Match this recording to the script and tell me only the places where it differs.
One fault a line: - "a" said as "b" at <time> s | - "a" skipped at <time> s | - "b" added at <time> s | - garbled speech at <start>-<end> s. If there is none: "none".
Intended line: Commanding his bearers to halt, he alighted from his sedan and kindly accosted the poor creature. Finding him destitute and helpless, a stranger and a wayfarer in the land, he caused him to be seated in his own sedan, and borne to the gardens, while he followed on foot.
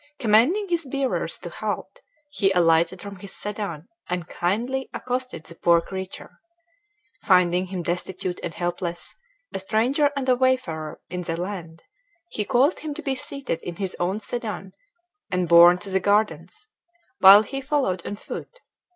none